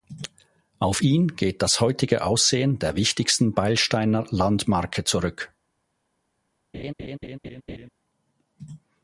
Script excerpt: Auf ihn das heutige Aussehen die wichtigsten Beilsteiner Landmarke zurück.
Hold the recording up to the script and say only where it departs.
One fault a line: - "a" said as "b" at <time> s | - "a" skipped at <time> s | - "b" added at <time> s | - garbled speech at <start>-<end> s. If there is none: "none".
- "geht" added at 1.3 s
- "die" said as "der" at 2.8 s